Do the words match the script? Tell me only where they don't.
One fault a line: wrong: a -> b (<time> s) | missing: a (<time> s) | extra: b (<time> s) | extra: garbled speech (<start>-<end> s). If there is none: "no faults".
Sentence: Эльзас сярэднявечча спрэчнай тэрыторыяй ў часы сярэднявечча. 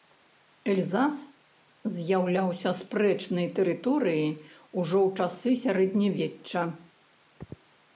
wrong: сярэднявечча -> з'яўляўся (2.0 s)
extra: ужо (4.8 s)